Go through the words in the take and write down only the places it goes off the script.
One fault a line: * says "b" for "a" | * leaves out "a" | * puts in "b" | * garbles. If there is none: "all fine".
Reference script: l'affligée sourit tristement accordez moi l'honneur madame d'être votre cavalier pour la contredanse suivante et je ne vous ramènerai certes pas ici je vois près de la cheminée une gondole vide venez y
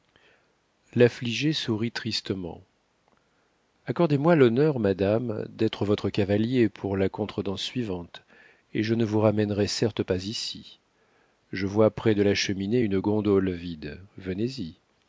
all fine